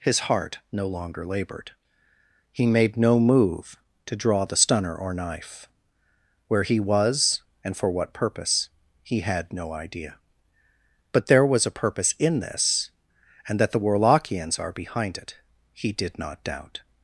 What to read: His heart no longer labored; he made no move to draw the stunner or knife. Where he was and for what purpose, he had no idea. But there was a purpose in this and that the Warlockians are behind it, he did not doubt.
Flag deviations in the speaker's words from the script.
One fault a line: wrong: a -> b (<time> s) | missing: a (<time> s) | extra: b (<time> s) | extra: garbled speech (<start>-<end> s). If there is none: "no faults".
no faults